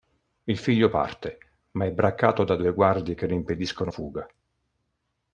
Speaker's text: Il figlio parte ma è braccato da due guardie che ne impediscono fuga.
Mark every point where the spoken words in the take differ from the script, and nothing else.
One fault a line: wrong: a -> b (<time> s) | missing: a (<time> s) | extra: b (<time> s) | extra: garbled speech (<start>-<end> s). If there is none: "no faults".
no faults